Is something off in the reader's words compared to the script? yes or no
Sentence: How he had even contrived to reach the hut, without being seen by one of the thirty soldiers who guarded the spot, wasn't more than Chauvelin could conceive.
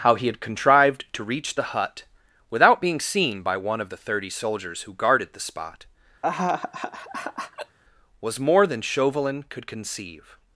yes